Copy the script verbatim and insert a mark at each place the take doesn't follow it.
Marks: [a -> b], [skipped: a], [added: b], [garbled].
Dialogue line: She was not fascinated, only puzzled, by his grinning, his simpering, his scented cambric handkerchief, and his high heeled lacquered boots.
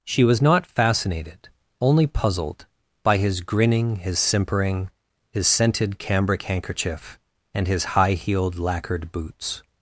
She was not fascinated, only puzzled, by his grinning, his simpering, his scented cambric handkerchief, and his high heeled lacquered boots.